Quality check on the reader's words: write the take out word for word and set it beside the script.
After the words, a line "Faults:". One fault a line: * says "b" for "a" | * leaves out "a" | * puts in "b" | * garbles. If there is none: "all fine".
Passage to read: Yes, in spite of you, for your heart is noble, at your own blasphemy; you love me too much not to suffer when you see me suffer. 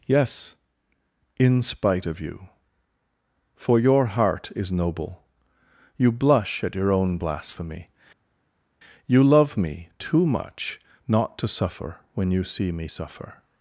Yes, in spite of you, for your heart is noble, you blush at your own blasphemy; you love me too much not to suffer when you see me suffer.
Faults:
* puts in "you blush"